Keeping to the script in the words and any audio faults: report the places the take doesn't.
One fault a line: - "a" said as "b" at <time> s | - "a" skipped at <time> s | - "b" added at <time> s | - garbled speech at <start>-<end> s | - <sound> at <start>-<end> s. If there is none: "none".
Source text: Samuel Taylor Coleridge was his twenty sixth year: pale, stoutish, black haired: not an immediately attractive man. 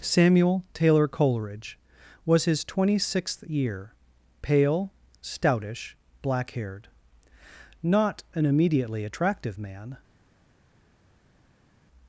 none